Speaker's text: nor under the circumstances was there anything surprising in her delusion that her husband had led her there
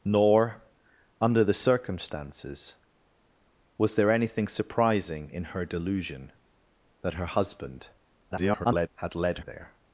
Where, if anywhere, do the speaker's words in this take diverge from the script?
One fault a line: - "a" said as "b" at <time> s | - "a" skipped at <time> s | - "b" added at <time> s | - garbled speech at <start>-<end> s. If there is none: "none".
- garbled speech at 8.3-8.9 s
- "her" skipped at 9.4 s